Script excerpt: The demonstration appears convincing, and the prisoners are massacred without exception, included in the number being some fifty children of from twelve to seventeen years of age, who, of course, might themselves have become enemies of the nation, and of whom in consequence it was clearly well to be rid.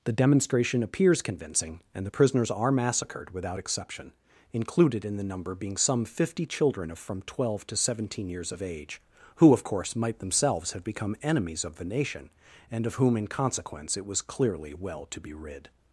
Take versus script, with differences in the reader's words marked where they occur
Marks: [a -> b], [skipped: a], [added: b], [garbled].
The demonstration appears convincing, and the prisoners are massacred without exception, included in the number being some fifty children of from twelve to seventeen years of age, who, of course, might themselves have become enemies of the nation, and of whom in consequence it was clearly well to be rid.